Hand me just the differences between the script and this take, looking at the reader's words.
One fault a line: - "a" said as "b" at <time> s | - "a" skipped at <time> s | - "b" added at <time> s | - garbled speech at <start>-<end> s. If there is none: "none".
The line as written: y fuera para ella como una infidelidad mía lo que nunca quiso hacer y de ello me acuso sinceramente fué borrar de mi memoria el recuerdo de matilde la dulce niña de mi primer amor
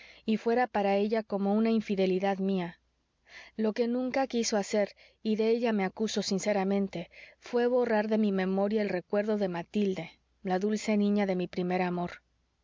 none